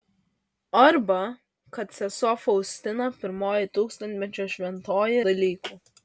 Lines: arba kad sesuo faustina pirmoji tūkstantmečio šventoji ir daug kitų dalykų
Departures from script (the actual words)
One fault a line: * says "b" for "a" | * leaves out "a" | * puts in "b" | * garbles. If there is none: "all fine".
* leaves out "ir daug kitų"